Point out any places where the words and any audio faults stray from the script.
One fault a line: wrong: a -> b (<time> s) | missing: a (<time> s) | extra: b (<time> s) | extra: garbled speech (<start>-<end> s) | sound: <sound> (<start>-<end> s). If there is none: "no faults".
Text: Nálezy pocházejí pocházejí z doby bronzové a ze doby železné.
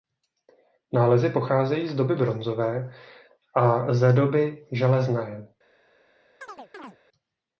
missing: pocházejí (1.9 s)
sound: chirp (6.4-7.0 s)